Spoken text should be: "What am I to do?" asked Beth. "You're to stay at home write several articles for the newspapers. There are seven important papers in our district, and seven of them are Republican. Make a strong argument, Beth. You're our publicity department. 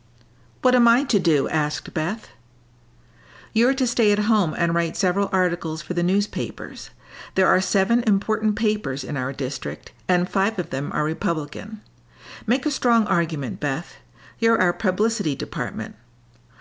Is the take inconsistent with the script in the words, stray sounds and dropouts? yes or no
yes